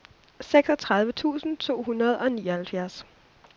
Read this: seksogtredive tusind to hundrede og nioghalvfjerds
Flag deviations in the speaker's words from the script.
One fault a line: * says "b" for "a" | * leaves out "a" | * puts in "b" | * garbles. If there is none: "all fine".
all fine